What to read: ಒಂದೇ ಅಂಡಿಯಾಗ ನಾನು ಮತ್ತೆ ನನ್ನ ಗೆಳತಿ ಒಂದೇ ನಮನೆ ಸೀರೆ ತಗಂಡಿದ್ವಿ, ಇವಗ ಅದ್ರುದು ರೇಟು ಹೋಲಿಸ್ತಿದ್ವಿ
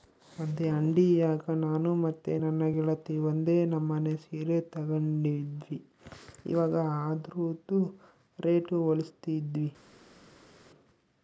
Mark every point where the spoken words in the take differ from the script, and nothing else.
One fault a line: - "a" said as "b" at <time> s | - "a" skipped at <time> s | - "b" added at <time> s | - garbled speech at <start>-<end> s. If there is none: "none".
none